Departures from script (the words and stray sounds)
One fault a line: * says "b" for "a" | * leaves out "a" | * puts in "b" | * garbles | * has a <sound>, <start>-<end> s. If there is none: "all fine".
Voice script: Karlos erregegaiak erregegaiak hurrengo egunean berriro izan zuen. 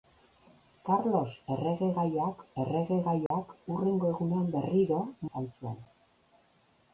* has a dropout, 3.3-3.3 s